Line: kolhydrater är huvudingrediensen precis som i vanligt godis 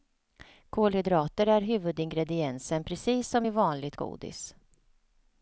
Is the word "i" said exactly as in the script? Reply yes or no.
yes